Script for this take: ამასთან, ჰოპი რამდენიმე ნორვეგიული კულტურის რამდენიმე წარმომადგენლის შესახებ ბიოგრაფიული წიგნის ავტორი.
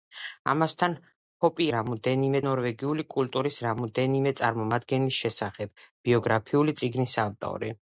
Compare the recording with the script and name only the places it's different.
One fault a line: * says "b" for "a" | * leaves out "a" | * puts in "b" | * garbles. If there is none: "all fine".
all fine